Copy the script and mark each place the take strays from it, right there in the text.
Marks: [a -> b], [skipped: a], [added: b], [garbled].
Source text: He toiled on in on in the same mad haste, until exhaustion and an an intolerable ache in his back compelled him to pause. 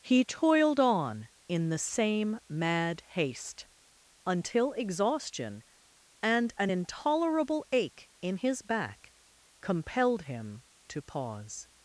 He toiled on in [skipped: on in] the same mad haste, until exhaustion and an [skipped: an] intolerable ache in his back compelled him to pause.